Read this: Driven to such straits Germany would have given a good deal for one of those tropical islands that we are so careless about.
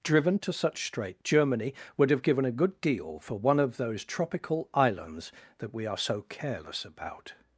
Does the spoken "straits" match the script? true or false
false